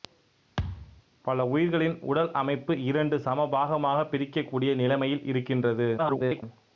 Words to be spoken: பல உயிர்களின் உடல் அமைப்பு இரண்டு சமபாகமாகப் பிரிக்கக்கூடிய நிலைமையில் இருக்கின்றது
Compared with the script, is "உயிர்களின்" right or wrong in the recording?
right